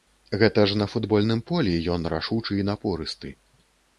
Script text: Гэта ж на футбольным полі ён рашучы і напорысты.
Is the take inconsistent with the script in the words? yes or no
no